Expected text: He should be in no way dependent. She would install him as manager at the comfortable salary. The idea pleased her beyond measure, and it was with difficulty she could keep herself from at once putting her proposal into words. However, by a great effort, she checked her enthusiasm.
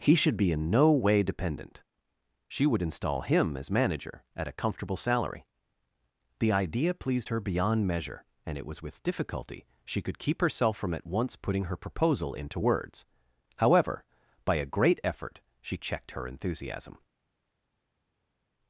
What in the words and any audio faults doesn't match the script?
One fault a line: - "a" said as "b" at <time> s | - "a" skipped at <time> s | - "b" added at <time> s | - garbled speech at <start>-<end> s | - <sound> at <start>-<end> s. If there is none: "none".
- "the" said as "a" at 4.5 s